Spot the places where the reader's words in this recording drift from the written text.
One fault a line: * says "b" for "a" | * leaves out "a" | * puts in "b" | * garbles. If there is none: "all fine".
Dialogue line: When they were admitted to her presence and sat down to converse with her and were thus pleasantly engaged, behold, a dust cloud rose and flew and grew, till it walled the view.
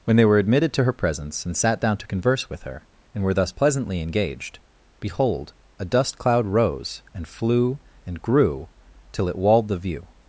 all fine